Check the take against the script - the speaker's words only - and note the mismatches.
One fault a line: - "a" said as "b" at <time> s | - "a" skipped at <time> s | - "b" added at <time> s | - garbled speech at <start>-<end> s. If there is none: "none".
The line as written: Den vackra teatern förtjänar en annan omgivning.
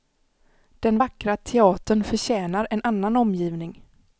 none